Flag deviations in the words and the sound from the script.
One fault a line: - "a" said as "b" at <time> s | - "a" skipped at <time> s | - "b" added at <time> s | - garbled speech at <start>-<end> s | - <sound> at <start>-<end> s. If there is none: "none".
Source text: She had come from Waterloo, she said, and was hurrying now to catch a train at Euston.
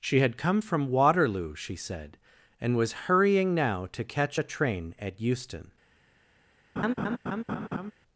- laugh at 6.8-7.9 s